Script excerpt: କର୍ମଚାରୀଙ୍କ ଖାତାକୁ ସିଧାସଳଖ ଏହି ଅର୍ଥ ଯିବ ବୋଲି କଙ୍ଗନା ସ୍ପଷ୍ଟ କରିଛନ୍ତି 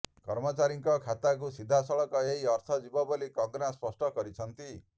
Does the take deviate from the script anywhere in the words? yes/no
no